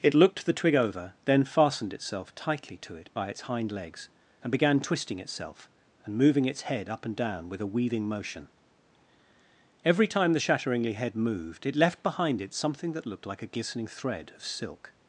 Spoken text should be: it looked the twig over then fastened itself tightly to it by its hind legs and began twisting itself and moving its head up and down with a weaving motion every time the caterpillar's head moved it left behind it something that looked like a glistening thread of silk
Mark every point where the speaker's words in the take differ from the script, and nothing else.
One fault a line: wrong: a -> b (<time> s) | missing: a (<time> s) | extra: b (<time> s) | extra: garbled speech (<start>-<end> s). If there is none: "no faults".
wrong: caterpillar's -> shatteringly (10.4 s)